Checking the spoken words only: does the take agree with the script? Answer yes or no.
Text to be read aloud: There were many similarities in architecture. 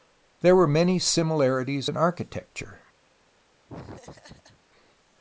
yes